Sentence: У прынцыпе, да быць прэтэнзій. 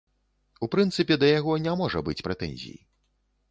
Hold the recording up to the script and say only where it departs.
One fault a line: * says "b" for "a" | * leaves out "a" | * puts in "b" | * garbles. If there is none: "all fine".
* puts in "яго не можа"